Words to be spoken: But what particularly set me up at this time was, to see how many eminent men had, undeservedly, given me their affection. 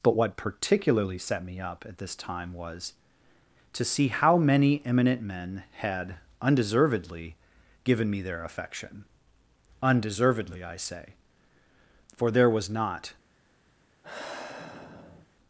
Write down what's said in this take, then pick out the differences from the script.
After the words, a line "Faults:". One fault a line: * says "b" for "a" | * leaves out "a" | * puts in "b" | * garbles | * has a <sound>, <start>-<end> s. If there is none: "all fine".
But what particularly set me up at this time was, to see how many eminent men had, undeservedly, given me their affection. Undeservedly, I say; for there was not
Faults:
* puts in "Undeservedly I say for there was not"
* has a sigh, 14.0-15.3 s